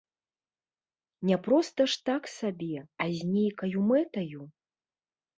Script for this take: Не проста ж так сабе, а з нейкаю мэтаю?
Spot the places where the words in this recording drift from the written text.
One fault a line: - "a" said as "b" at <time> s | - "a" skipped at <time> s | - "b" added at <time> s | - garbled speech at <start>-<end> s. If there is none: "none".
none